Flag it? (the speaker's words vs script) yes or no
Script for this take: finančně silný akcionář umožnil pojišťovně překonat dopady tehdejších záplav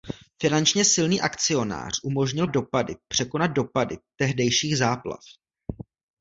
yes